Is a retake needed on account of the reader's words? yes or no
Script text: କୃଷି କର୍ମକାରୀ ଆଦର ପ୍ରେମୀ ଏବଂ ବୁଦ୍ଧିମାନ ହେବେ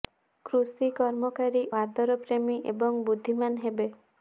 no